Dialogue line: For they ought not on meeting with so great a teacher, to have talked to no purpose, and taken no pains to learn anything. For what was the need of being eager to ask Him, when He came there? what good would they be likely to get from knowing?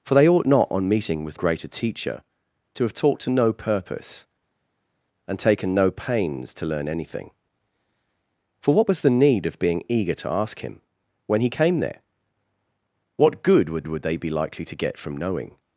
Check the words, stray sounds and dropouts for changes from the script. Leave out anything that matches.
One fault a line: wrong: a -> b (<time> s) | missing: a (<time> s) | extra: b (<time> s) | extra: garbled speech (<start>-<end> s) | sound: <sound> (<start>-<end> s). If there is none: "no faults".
missing: so (1.4 s)
extra: would (13.9 s)